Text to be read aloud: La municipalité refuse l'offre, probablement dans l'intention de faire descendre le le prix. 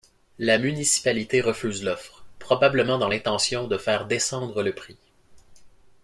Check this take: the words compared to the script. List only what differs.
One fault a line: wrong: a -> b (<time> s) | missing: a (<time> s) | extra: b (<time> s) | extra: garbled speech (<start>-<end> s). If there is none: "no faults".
missing: le (4.7 s)